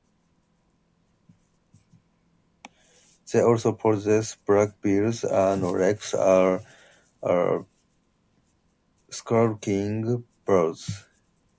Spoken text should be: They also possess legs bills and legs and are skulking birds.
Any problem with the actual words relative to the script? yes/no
yes